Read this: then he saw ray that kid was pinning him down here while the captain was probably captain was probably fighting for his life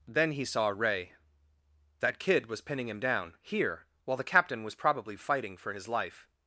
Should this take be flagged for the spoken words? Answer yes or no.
yes